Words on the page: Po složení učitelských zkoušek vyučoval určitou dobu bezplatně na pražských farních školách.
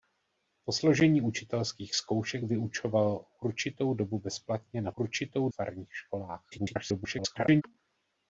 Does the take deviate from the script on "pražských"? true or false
true